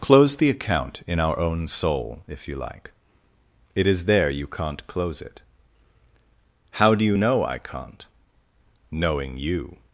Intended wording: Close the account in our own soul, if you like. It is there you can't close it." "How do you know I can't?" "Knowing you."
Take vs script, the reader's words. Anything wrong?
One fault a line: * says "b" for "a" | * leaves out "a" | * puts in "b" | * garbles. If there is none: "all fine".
all fine